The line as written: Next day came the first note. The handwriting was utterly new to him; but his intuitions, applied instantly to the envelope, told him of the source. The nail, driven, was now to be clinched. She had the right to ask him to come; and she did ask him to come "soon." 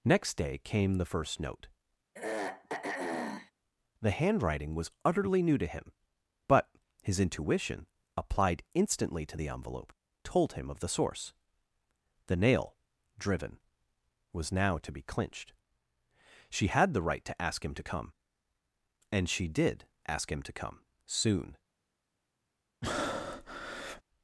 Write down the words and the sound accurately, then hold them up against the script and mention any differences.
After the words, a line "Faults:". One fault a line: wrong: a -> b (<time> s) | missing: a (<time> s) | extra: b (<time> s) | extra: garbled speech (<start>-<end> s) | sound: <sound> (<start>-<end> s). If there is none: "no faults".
Next day came the first note. The handwriting was utterly new to him; but his intuition, applied instantly to the envelope, told him of the source. The nail, driven, was now to be clinched. She had the right to ask him to come; and she did ask him to come "soon."
Faults:
sound: throat clearing (2.1-3.5 s)
wrong: intuitions -> intuition (7.2 s)
sound: breath (22.8-24.0 s)